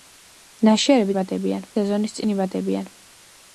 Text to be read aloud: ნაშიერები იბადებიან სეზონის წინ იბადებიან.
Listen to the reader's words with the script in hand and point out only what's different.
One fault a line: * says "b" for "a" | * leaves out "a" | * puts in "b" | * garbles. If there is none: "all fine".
all fine